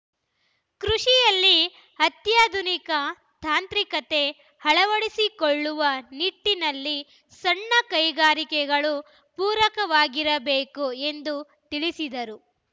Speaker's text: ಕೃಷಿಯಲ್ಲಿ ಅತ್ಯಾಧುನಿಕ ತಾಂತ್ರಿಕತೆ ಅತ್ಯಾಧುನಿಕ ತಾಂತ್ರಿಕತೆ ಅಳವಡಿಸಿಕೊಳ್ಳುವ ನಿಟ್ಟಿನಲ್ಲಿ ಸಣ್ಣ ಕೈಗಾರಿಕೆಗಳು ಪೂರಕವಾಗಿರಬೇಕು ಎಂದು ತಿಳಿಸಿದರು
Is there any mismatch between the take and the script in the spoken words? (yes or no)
yes